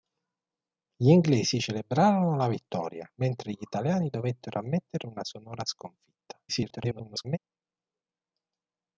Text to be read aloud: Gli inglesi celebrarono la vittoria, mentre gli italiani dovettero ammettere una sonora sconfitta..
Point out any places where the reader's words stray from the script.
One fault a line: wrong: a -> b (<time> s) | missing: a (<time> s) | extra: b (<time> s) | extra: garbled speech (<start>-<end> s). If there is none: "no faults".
extra: garbled speech (6.5-7.4 s)